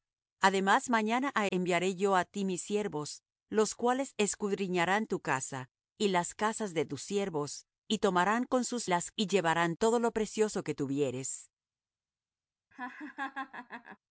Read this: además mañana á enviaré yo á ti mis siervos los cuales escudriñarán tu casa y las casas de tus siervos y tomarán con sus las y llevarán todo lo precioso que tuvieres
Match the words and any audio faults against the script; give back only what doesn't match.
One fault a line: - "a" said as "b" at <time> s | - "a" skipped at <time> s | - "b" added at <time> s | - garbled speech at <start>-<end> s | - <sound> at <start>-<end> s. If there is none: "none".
- laugh at 12.7-14.0 s